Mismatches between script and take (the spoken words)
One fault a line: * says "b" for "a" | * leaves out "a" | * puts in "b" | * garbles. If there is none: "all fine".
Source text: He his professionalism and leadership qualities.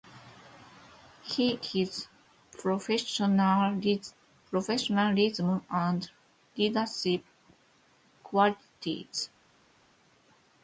all fine